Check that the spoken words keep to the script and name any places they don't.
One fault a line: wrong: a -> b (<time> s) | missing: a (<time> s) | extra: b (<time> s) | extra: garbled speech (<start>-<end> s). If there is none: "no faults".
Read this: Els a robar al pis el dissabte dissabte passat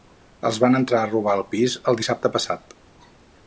extra: van entrar (0.6 s)
missing: dissabte (2.3 s)